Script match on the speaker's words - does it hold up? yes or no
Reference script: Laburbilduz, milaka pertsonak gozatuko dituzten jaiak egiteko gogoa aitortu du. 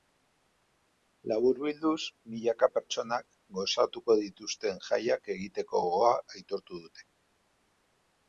no